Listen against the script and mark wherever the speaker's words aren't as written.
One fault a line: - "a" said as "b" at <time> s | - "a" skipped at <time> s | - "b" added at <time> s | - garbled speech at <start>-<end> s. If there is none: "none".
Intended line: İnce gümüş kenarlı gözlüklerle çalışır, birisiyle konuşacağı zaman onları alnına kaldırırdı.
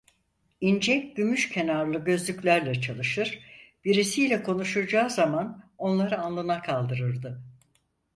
none